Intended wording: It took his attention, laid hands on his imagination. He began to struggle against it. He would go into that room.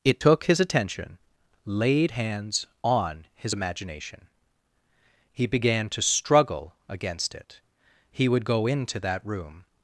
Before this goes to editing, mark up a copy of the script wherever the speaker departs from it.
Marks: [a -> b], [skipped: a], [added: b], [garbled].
It took his attention, laid hands on his imagination. He began to struggle against it. He would go into that room.